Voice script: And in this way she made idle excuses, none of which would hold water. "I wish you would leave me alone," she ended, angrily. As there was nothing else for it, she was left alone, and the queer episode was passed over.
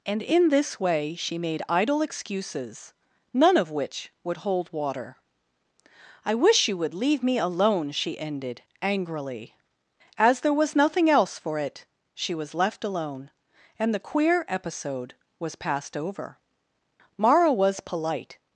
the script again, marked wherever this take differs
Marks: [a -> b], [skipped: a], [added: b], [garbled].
And in this way she made idle excuses, none of which would hold water. "I wish you would leave me alone," she ended, angrily. As there was nothing else for it, she was left alone, and the queer episode was passed over. [added: Mara was polite]